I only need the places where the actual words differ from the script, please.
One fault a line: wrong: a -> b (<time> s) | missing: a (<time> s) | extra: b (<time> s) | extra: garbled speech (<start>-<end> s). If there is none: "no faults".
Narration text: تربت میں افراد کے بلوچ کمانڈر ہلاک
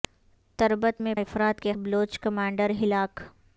no faults